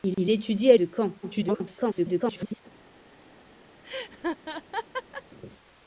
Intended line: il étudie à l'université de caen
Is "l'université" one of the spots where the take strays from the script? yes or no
yes